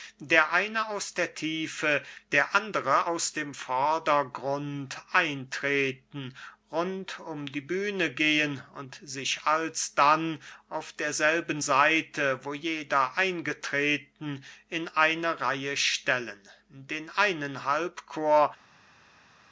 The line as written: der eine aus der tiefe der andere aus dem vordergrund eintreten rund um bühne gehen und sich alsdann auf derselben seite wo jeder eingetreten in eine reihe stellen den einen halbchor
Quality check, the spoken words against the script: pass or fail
fail